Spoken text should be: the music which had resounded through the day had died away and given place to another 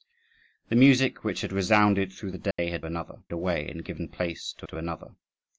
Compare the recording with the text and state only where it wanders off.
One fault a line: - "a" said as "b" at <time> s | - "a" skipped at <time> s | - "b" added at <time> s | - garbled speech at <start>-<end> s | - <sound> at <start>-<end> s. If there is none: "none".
- dropout at 2.5-2.6 s
- "died" said as "another" at 2.9 s
- "to" added at 4.7 s